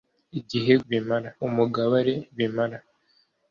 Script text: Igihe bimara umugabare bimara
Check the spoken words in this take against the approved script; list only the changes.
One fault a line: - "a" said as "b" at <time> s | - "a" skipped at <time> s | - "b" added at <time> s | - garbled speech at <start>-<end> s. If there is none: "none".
none